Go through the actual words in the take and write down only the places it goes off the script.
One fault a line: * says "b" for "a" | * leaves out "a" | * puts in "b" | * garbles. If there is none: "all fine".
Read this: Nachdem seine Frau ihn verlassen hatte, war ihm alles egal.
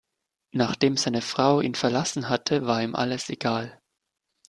all fine